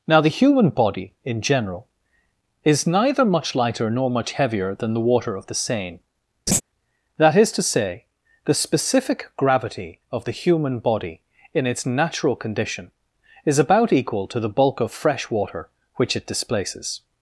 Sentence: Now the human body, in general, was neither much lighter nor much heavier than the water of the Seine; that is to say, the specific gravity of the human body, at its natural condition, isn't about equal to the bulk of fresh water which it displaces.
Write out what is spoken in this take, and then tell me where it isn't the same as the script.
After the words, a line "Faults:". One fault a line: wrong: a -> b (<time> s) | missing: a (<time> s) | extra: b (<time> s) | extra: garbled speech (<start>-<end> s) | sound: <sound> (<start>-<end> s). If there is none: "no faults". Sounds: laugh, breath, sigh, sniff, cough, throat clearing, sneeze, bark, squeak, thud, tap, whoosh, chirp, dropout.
Now the human body, in general, is neither much lighter nor much heavier than the water of the Seine; that is to say, the specific gravity of the human body, in its natural condition, is about equal to the bulk of fresh water which it displaces.
Faults:
wrong: was -> is (2.6 s)
sound: laugh (6.5-6.6 s)
wrong: at -> in (11.5 s)
wrong: isn't -> is (13.5 s)